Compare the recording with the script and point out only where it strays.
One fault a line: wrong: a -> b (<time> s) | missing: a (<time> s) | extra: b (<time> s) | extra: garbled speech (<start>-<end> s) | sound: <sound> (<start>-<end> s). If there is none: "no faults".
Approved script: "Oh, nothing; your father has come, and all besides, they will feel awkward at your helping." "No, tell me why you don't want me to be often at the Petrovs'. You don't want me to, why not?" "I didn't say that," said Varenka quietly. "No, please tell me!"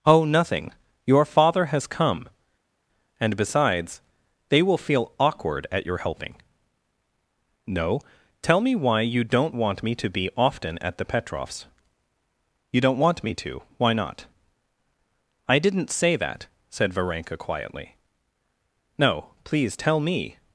missing: all (3.4 s)